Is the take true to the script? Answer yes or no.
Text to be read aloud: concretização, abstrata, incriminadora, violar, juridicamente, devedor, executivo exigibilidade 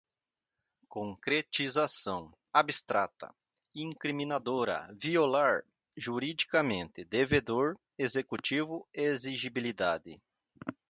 yes